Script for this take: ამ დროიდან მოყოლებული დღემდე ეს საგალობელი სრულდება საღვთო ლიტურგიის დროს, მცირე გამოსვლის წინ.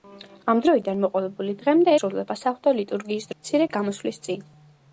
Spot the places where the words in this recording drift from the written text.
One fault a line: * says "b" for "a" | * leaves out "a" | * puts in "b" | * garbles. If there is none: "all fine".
* leaves out "ეს საგალობელი"
* leaves out "დროს"